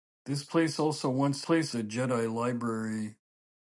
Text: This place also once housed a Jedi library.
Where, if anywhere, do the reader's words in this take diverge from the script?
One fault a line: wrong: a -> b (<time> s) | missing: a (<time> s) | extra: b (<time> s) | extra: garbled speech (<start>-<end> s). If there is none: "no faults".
wrong: housed -> place (1.4 s)